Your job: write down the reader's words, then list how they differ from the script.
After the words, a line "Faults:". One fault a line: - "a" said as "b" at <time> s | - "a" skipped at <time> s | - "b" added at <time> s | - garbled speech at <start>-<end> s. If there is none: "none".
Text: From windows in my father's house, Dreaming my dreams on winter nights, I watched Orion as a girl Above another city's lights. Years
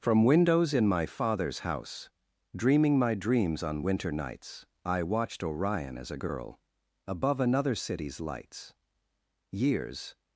From windows in my father's house, Dreaming my dreams on winter nights, I watched Orion as a girl Above another city's lights. Years
Faults:
none